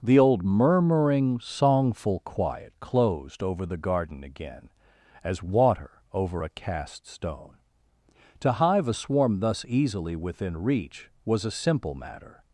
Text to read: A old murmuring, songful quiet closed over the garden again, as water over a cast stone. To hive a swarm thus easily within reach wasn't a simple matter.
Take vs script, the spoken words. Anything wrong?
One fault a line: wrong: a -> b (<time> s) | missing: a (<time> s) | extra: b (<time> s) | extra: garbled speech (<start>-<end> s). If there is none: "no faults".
wrong: A -> The (0.0 s)
wrong: wasn't -> was (11.3 s)